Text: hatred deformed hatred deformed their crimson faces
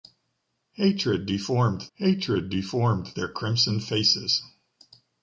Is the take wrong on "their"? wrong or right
right